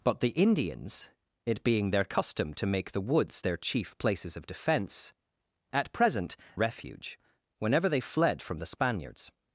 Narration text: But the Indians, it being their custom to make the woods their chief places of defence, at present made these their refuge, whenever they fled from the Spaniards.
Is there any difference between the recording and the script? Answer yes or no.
yes